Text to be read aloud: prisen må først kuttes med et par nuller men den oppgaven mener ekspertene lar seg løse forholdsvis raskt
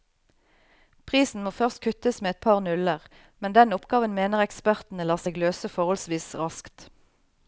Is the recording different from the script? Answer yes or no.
no